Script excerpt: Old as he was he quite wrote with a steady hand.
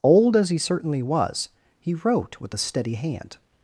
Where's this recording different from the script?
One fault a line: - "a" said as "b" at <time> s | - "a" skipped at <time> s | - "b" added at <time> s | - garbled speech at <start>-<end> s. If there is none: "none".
- "certainly" added at 0.6 s
- "quite" skipped at 1.9 s